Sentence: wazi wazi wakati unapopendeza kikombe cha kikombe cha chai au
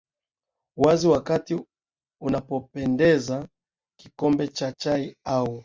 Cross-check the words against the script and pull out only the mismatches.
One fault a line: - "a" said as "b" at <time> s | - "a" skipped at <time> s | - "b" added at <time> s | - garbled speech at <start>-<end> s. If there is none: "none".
- "wazi" skipped at 1.1 s
- "kikombe cha" skipped at 4.7 s